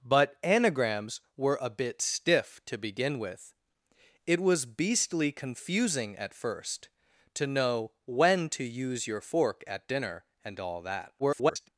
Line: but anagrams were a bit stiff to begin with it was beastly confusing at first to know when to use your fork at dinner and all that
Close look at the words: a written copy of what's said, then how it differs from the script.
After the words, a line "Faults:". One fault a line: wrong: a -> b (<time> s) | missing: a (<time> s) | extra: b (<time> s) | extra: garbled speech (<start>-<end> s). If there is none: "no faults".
but anagrams were a bit stiff to begin with it was beastly confusing at first to know when to use your fork at dinner and all that [garbled]
Faults:
extra: garbled speech (11.2-11.7 s)